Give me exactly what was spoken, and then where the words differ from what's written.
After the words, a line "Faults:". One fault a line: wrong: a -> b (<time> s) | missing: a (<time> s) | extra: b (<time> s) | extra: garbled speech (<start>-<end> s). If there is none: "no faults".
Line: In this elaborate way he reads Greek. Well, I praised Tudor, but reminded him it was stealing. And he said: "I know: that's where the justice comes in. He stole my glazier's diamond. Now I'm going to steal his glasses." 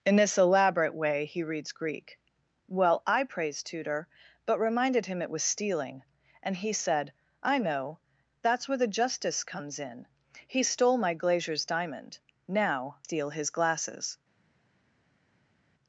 In this elaborate way he reads Greek. Well, I praised Tudor, but reminded him it was stealing. And he said: "I know: that's where the justice comes in. He stole my glazier's diamond. Now Steal his glasses."
Faults:
missing: I'm going to (13.0 s)